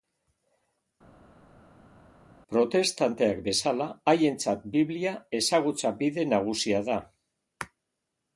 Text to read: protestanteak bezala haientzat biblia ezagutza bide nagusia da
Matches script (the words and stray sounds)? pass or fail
pass